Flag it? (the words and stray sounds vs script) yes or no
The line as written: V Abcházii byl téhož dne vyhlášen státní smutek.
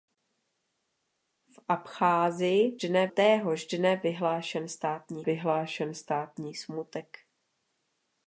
yes